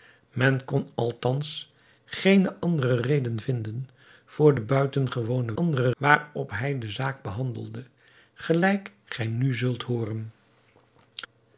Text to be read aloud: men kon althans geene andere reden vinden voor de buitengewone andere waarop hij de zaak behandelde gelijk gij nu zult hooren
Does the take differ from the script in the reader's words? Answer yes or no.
no